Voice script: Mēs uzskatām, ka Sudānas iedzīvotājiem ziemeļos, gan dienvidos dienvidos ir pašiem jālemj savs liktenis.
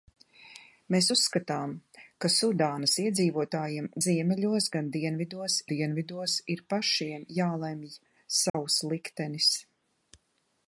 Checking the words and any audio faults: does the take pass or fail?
fail